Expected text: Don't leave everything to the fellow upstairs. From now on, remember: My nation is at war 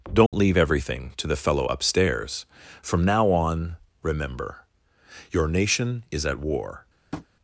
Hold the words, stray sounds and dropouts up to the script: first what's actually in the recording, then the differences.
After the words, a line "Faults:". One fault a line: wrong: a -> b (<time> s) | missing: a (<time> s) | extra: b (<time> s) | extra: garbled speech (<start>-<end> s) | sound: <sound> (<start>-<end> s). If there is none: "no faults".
Don't leave everything to the fellow upstairs. From now on, remember: Your nation is at war
Faults:
sound: dropout (0.3-0.3 s)
wrong: My -> Your (5.3 s)
sound: tap (7.1-7.3 s)